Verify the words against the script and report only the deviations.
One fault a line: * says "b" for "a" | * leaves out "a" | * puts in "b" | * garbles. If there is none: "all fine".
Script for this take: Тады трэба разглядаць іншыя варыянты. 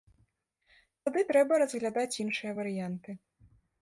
all fine